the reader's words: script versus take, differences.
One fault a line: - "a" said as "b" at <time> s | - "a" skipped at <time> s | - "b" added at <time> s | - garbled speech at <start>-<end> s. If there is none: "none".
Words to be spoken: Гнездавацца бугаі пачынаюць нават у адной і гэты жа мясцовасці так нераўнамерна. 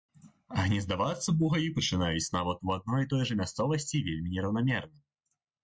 - "гэты" said as "той" at 3.1 s
- "так" said as "вельмі" at 4.1 s